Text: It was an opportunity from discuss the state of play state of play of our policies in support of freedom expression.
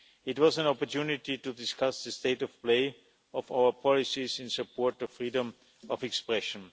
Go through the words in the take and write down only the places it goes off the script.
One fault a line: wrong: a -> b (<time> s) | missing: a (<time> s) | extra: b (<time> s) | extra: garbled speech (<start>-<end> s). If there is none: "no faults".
wrong: from -> to (1.4 s)
missing: state (3.0 s)
missing: play of (3.5 s)
extra: of (5.9 s)